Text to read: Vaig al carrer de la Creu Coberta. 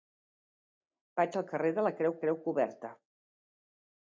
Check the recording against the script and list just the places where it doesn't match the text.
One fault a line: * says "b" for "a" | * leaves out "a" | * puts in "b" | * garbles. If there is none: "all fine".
* puts in "Creu"